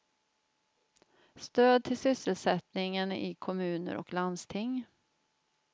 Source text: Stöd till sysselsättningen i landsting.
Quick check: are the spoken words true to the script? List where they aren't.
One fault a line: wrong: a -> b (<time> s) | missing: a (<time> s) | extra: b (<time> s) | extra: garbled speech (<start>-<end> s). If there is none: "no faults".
extra: kommuner och (3.4 s)